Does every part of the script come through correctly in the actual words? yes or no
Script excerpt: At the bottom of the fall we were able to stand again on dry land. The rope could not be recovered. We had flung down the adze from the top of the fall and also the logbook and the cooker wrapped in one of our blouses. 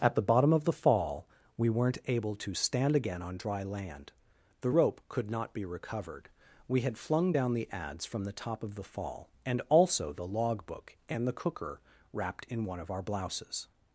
no